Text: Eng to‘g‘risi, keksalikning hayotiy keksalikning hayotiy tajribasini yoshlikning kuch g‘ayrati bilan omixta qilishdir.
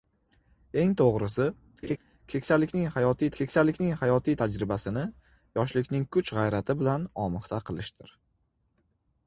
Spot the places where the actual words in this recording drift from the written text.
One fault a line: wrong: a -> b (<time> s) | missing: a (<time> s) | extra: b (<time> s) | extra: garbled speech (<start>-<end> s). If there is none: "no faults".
no faults